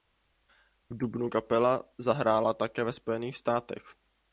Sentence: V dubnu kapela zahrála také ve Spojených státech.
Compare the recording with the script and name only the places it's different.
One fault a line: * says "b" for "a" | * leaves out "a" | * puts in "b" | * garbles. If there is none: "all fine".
all fine